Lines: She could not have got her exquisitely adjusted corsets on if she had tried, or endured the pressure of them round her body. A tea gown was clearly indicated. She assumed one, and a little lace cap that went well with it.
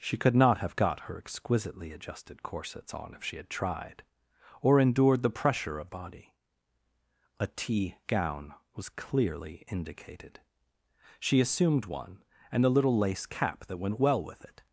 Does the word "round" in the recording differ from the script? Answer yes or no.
yes